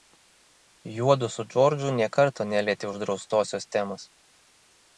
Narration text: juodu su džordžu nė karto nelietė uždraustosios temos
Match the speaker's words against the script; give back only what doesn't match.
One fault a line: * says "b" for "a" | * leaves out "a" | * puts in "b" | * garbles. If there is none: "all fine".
all fine